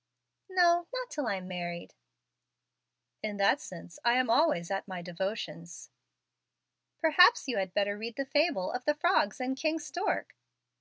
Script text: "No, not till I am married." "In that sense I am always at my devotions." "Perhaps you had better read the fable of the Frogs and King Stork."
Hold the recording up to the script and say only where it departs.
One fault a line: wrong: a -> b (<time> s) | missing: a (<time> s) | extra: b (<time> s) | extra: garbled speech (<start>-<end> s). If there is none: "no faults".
no faults